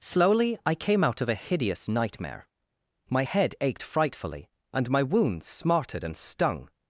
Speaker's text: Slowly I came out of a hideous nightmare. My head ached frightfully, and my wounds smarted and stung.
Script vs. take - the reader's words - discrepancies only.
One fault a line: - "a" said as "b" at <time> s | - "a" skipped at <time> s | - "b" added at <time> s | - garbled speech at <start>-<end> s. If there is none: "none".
none